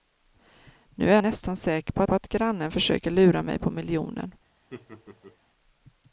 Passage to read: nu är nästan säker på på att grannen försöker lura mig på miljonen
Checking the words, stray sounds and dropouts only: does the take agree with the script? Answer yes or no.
no